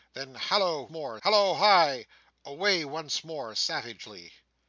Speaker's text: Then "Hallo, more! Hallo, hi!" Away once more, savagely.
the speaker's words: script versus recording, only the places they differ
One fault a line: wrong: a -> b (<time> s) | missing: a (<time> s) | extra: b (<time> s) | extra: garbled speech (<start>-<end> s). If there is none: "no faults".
no faults